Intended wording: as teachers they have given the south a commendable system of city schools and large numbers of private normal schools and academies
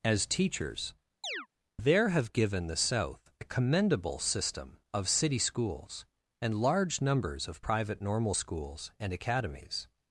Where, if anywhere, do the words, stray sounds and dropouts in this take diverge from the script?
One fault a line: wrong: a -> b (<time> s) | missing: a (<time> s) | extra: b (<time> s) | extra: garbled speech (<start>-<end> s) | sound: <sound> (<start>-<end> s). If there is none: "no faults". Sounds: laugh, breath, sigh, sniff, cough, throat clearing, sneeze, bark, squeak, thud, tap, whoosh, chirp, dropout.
sound: chirp (1.2-1.5 s)
wrong: they -> there (1.8 s)